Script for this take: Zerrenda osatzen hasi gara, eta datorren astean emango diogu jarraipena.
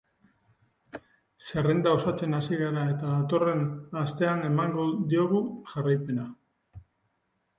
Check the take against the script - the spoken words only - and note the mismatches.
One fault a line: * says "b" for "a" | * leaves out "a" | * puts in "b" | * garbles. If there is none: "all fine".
all fine